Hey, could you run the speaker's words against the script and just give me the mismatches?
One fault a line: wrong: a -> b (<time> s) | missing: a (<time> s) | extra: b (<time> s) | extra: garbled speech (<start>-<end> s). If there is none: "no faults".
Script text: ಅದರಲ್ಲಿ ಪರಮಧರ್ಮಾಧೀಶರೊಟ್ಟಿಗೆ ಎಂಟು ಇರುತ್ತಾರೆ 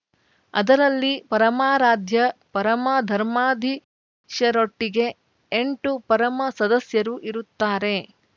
extra: ಪರಮಾರಾಧ್ಯ (1.3 s)
extra: ಪರಮ ಸದಸ್ಯರು (6.1 s)